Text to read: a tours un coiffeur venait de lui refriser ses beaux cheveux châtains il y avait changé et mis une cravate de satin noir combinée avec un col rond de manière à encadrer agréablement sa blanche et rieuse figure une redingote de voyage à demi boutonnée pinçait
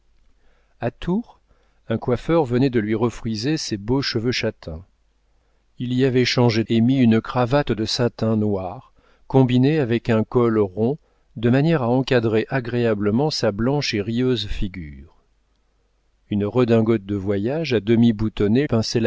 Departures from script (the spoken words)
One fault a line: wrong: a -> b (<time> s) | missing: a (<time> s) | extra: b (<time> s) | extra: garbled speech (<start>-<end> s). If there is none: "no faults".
no faults